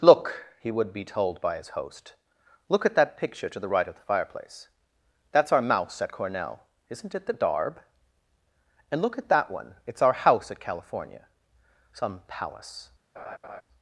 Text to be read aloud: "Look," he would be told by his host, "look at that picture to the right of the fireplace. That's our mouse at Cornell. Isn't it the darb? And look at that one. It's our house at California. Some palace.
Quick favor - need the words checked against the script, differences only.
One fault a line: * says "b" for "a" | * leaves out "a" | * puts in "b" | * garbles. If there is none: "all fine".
all fine